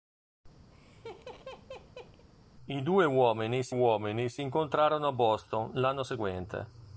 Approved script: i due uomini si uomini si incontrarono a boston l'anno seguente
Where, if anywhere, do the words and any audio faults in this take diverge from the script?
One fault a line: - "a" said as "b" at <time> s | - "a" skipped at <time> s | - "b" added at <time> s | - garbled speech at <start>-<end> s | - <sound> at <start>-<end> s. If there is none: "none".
- laugh at 0.7-2.2 s